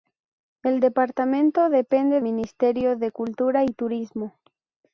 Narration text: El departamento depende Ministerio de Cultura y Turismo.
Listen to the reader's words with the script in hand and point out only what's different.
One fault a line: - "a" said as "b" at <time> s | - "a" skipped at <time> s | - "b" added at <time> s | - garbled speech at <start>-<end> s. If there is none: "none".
none